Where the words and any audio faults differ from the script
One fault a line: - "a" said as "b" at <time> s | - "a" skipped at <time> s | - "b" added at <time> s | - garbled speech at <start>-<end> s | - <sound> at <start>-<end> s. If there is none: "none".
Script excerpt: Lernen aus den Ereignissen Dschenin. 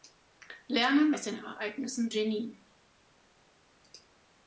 none